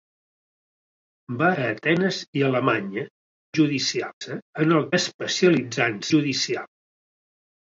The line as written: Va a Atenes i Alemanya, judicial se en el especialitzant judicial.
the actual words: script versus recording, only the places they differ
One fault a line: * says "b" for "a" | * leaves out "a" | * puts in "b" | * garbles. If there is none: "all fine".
all fine